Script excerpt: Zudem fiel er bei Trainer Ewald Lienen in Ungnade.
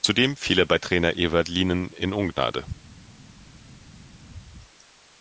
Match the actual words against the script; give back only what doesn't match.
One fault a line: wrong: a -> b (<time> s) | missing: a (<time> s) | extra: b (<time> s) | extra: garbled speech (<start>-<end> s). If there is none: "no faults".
no faults